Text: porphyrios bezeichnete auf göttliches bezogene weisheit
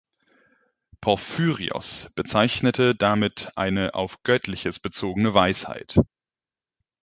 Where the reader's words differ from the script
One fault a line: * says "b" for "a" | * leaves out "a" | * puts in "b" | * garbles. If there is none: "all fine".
* puts in "damit eine"